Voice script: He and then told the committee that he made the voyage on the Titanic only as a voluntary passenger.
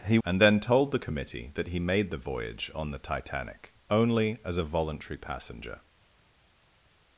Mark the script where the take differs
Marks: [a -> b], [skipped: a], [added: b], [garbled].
He and then told the committee that he made the voyage on the Titanic only as a voluntary passenger.